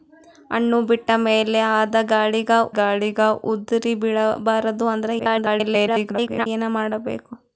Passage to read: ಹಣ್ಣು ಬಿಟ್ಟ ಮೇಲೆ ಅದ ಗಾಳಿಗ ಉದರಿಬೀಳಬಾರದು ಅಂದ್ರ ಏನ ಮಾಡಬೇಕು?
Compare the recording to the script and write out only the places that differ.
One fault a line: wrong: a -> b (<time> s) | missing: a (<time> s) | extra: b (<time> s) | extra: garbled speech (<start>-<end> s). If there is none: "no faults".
extra: ಗಾಳಿಗ (2.8 s)
extra: garbled speech (5.2-6.5 s)